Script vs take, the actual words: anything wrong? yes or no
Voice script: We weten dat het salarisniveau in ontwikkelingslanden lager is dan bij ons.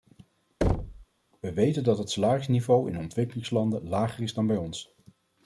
no